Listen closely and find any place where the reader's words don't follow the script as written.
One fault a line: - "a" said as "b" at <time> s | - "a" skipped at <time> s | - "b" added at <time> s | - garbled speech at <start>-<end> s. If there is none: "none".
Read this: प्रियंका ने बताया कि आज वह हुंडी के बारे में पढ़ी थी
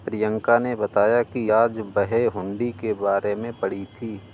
none